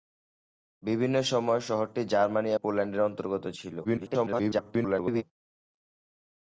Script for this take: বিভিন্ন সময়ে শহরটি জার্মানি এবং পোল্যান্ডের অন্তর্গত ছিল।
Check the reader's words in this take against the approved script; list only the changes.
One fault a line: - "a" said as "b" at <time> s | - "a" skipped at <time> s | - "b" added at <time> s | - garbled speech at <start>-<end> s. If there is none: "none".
- "এবং" skipped at 2.5 s
- garbled speech at 3.8-5.2 s